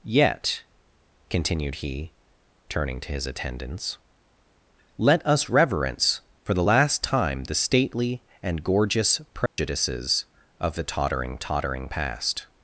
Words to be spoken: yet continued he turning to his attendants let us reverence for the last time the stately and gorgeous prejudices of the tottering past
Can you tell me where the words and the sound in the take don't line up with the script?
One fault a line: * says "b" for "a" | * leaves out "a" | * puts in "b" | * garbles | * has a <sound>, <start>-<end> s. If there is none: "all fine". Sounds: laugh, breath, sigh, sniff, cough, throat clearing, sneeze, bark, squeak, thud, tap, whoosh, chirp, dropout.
* has a dropout, 9.5-9.6 s
* puts in "tottering"